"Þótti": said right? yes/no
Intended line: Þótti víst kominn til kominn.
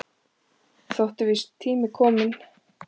yes